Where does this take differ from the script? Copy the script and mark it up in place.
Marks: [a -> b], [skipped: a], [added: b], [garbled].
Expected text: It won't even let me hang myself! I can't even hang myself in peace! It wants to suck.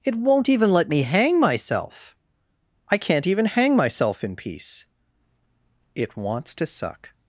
It won't even let me hang myself! I can't even hang myself in peace! It wants to suck.